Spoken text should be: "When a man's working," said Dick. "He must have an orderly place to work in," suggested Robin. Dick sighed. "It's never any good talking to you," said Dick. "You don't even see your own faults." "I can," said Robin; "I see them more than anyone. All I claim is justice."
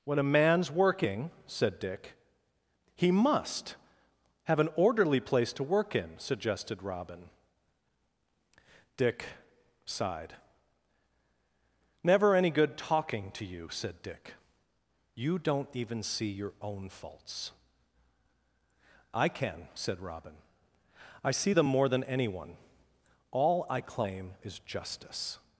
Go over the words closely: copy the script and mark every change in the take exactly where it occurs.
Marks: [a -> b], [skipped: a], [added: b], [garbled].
"When a man's working," said Dick. "He must have an orderly place to work in," suggested Robin. Dick sighed. [skipped: "It's] never any good talking to you," said Dick. "You don't even see your own faults." "I can," said Robin; "I see them more than anyone. All I claim is justice."